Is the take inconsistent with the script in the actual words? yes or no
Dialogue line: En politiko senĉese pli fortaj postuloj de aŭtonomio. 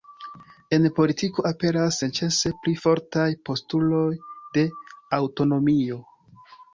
yes